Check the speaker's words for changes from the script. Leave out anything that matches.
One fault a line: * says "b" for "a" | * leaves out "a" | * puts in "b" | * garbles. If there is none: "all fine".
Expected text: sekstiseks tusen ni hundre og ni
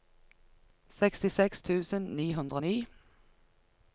all fine